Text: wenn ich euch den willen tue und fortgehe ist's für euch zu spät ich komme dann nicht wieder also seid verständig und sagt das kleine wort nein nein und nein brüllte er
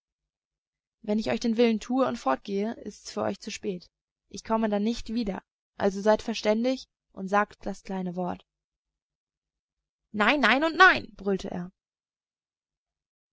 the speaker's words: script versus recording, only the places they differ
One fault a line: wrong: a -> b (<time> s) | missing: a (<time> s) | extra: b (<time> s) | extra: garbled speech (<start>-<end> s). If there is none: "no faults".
no faults